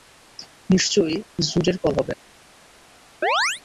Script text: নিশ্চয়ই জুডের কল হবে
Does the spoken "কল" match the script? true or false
true